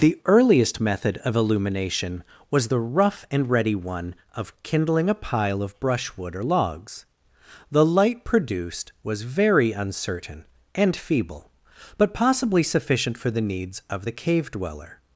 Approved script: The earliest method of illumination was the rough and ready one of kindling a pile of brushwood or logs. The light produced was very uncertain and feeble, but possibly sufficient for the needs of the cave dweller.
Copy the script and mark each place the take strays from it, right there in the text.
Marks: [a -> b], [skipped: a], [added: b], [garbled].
The earliest method of illumination was the rough and ready one of kindling a pile of brushwood or logs. The light produced was very uncertain and feeble, but possibly sufficient for the needs of the cave dweller.